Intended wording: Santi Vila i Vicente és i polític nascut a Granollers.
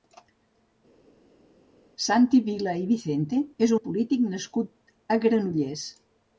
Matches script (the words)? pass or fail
pass